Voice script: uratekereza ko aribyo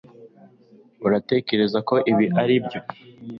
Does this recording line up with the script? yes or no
no